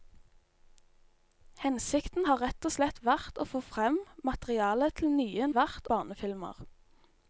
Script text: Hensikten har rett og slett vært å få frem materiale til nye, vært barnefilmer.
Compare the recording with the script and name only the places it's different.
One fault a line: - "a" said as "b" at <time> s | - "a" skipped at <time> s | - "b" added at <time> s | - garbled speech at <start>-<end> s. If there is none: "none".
none